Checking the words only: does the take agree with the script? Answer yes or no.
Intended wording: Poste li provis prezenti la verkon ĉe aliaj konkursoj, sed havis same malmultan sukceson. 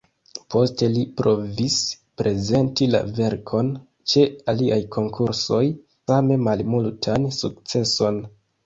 no